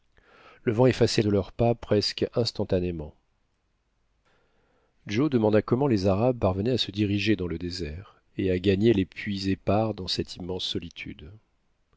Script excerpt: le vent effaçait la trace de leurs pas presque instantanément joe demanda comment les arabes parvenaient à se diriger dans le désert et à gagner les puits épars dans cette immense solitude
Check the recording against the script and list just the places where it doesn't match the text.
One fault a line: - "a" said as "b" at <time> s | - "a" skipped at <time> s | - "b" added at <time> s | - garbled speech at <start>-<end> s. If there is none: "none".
- "la trace" skipped at 1.2 s